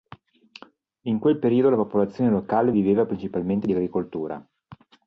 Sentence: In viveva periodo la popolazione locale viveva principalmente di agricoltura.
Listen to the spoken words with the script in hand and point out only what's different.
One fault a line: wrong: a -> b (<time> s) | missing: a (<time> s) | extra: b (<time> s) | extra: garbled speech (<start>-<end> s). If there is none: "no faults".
wrong: viveva -> quel (1.2 s)